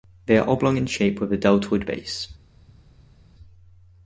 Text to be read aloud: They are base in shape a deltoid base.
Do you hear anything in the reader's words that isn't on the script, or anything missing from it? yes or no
yes